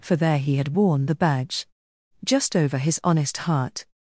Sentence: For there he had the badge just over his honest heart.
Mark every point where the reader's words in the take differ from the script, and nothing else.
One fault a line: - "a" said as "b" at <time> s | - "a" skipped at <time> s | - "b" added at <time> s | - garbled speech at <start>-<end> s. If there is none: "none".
- "worn" added at 0.7 s